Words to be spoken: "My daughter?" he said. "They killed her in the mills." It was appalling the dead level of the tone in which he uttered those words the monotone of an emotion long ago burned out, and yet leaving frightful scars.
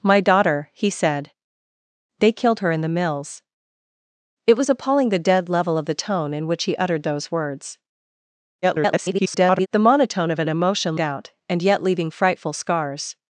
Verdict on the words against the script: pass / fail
fail